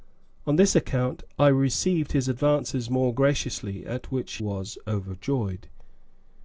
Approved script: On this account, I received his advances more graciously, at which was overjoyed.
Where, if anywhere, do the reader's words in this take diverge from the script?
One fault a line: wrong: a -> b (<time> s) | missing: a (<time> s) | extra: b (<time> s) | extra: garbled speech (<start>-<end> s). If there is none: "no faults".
no faults